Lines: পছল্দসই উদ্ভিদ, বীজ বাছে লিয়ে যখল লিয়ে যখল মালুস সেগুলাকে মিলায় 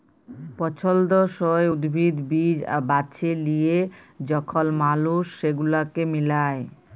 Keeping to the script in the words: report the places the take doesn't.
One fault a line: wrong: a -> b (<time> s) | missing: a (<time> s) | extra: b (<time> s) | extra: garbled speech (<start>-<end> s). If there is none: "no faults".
missing: লিয়ে যখল (4.7 s)